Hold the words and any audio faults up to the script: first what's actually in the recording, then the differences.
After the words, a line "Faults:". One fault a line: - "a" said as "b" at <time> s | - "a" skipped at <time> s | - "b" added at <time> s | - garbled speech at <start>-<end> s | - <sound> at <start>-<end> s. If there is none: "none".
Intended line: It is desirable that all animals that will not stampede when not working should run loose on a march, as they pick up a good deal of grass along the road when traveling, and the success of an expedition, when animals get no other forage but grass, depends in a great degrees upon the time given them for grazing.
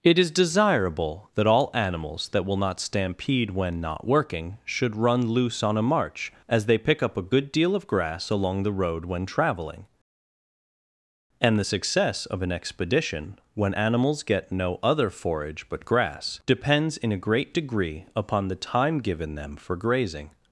It is desirable that all animals that will not stampede when not working should run loose on a march, as they pick up a good deal of grass along the road when traveling, and the success of an expedition, when animals get no other forage but grass, depends in a great degree upon the time given them for grazing.
Faults:
- "degrees" said as "degree" at 17.5 s